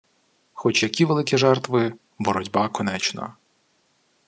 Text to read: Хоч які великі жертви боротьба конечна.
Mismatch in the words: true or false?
false